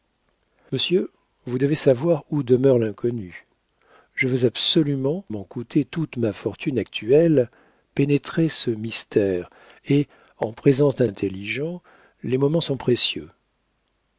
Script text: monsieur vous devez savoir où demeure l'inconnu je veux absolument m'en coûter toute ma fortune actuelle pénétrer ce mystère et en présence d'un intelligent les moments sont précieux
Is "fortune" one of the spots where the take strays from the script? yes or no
no